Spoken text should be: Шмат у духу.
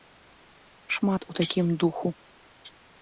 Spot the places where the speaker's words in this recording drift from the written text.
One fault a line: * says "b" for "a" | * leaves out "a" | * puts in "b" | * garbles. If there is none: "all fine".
* puts in "такім"